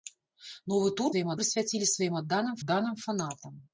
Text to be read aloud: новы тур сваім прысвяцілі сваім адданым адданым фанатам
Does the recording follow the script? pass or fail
pass